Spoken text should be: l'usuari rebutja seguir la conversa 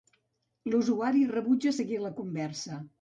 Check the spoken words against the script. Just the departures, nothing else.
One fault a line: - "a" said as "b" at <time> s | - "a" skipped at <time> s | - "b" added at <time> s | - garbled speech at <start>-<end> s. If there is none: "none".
none